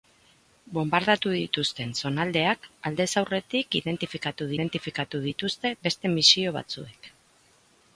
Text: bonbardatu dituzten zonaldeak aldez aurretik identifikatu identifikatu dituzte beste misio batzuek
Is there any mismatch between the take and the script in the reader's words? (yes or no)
no